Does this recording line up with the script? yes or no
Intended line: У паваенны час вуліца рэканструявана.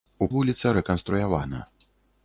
no